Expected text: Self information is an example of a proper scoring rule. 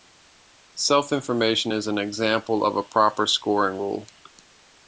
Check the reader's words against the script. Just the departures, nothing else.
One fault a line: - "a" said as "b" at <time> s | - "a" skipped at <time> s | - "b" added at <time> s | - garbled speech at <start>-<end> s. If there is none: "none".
none